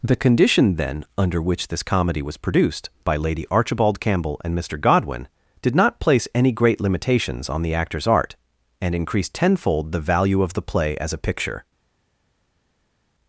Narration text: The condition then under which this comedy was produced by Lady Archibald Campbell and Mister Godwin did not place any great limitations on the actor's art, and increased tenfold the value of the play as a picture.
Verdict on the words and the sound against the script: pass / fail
pass